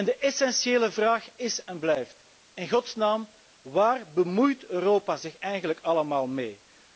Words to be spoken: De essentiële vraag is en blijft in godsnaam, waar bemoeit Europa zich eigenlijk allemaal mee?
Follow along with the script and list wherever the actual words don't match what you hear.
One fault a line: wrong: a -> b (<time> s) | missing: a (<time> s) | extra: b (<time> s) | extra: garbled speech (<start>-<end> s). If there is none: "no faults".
no faults